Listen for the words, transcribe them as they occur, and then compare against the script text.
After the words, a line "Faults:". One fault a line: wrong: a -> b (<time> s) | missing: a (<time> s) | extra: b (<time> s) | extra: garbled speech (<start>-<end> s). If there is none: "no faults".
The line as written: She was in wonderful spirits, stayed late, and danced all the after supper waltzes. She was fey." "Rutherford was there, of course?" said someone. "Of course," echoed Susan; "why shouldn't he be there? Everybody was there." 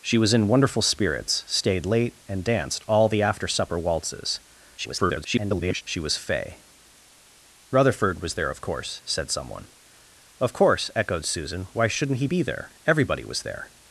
She was in wonderful spirits, stayed late, and danced all the after supper waltzes. [garbled] She was fey." "Rutherford was there, of course?" said someone. "Of course," echoed Susan; "why shouldn't he be there? Everybody was there."
Faults:
extra: garbled speech (4.8-5.8 s)